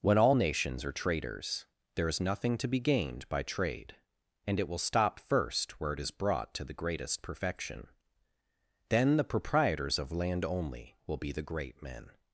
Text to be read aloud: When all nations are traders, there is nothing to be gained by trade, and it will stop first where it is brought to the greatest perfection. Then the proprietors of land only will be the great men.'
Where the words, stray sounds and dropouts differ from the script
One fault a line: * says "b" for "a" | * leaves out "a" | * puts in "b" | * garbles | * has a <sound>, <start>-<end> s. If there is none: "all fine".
all fine